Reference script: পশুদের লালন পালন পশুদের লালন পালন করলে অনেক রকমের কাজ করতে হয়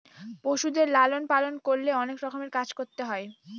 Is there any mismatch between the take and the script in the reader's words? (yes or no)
yes